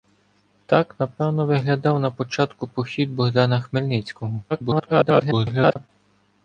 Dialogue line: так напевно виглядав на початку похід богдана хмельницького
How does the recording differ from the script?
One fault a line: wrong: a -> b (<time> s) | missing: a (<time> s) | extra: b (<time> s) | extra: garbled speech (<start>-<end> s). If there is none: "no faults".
extra: garbled speech (4.5-5.9 s)